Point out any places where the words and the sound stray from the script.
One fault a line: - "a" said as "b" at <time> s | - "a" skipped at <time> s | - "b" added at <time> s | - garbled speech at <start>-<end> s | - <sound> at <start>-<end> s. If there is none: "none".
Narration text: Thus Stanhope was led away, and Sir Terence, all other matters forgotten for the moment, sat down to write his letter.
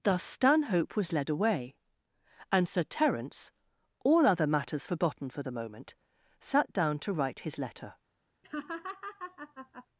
- laugh at 8.4-9.9 s